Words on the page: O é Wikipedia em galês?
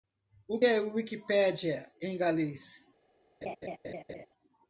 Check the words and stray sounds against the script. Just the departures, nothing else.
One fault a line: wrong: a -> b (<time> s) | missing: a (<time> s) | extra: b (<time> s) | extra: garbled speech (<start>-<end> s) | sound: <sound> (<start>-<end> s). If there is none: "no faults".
sound: laugh (3.4-4.3 s)